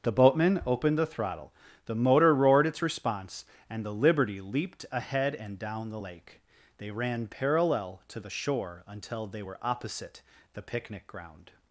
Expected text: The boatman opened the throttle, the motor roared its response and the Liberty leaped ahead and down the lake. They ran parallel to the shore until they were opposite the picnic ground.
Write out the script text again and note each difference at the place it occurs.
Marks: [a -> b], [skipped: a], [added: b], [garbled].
The boatman opened the throttle, the motor roared its response and the Liberty leaped ahead and down the lake. They ran parallel to the shore until they were opposite the picnic ground.